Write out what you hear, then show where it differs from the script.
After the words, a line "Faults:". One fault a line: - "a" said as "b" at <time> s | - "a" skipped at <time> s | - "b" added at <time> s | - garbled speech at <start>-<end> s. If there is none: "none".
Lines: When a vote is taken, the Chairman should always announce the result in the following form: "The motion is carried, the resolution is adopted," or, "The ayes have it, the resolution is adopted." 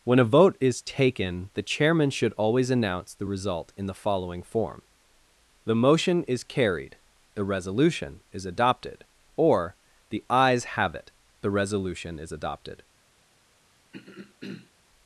When a vote is taken, the Chairman should always announce the result in the following form: "The motion is carried, the resolution is adopted," or, "The ayes have it, the resolution is adopted."
Faults:
none